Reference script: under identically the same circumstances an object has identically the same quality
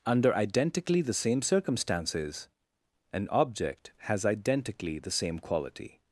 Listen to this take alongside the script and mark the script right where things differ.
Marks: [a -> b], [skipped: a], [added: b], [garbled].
under identically the same circumstances an object has identically the same quality